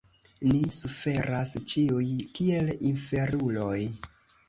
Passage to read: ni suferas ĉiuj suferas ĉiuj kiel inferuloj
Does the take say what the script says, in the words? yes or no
no